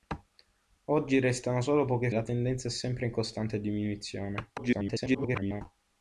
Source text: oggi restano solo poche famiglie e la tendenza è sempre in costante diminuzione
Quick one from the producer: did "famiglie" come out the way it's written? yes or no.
no